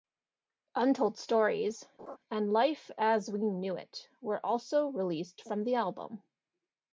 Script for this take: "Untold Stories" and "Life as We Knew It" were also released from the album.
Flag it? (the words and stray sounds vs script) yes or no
yes